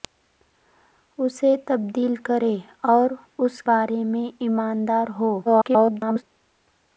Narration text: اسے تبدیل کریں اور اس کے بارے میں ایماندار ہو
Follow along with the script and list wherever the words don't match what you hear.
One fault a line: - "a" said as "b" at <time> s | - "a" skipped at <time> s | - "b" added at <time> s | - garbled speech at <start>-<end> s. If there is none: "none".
- "کے" skipped at 3.6 s
- garbled speech at 5.5-6.2 s